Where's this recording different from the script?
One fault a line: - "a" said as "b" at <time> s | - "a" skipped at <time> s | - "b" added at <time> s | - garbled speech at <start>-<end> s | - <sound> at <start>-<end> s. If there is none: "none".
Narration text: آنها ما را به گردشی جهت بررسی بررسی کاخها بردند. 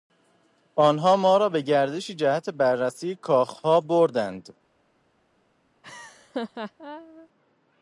- "بررسی" skipped at 3.1 s
- laugh at 5.8-7.3 s